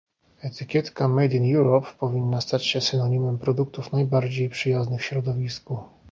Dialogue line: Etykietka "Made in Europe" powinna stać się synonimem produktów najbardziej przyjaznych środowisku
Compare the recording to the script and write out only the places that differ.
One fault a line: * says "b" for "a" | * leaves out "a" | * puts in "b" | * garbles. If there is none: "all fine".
all fine